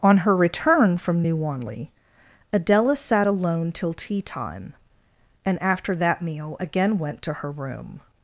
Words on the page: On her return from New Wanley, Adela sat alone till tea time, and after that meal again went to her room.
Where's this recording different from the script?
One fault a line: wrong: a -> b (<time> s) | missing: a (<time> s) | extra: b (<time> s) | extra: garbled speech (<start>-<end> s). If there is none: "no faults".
no faults